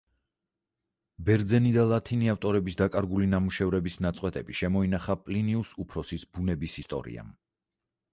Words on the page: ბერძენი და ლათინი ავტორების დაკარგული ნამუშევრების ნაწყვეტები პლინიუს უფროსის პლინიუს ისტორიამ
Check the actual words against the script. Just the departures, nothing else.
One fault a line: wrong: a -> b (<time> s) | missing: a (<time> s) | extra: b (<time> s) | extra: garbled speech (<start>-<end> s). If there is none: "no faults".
extra: შემოინახა (4.6 s)
wrong: პლინიუს -> ბუნების (6.4 s)